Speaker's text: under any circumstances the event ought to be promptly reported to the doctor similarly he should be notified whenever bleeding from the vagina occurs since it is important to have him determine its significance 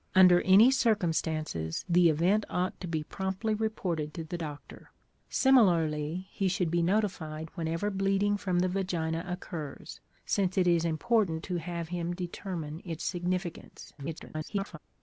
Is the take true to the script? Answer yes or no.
no